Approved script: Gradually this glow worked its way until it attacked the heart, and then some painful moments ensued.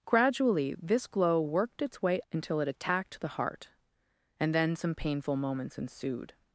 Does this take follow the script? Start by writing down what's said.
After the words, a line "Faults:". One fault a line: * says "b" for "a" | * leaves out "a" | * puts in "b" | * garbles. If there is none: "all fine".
Gradually this glow worked its way until it attacked the heart, and then some painful moments ensued.
Faults:
all fine